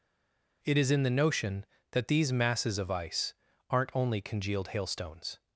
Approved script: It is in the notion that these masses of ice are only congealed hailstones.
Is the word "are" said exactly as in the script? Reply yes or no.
no